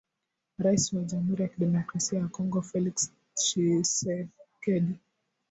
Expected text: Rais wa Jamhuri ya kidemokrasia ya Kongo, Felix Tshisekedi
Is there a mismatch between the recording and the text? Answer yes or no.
no